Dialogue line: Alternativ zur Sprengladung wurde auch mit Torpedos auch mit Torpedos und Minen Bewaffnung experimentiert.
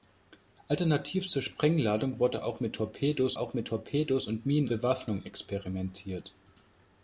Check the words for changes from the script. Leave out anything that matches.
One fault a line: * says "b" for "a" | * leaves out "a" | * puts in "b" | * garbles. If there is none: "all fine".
all fine